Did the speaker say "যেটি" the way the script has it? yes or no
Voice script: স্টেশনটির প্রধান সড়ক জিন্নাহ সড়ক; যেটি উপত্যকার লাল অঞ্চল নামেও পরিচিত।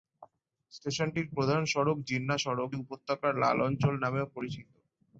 no